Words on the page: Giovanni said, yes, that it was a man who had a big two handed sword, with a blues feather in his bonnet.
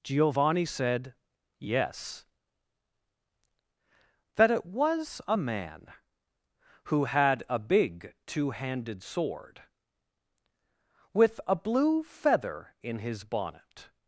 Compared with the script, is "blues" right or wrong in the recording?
wrong